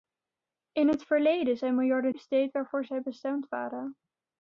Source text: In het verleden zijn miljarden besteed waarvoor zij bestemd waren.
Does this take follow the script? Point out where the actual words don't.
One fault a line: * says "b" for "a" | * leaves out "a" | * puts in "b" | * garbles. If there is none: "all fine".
all fine